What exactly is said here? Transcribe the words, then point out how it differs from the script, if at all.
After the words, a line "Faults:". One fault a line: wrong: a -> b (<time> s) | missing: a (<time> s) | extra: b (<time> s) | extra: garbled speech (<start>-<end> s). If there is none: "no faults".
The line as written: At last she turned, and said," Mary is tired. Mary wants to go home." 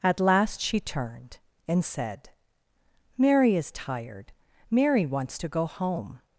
At last she turned, and said," Mary is tired. Mary wants to go home."
Faults:
no faults